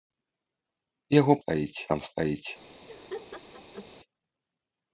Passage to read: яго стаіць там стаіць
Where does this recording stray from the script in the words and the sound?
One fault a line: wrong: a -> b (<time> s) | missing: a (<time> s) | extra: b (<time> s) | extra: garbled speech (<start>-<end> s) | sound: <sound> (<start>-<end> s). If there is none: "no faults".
sound: laugh (2.9-3.9 s)